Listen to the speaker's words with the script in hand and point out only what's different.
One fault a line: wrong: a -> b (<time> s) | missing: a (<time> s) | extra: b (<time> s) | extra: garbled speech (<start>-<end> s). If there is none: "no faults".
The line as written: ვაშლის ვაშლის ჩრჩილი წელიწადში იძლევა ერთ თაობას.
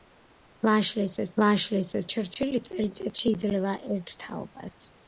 no faults